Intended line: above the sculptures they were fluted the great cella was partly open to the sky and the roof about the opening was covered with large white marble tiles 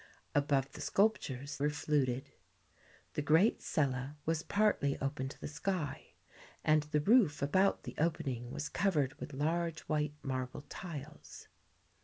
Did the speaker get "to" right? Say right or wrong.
right